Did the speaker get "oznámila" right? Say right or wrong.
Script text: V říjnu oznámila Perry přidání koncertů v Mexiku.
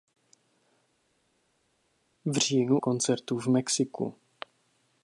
wrong